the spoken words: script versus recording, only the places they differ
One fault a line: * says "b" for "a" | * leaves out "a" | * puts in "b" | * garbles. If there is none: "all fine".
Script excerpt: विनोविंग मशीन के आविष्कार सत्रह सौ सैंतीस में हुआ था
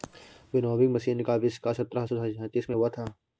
* says "का" for "के"